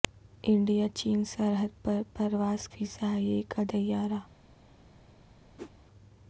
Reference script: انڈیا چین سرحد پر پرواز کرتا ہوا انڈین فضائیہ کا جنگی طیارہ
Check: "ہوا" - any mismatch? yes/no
yes